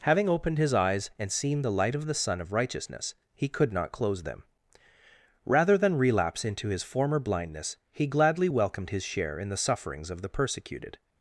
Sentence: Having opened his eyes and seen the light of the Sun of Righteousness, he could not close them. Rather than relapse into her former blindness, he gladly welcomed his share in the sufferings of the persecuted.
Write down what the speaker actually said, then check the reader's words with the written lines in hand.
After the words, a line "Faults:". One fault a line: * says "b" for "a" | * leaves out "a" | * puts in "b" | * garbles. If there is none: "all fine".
Having opened his eyes and seen the light of the Sun of Righteousness, he could not close them. Rather than relapse into his former blindness, he gladly welcomed his share in the sufferings of the persecuted.
Faults:
* says "his" for "her"